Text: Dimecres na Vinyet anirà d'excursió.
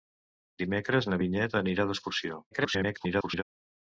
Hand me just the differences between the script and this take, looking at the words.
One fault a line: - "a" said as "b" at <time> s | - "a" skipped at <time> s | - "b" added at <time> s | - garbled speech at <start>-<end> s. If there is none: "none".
- garbled speech at 2.5-3.4 s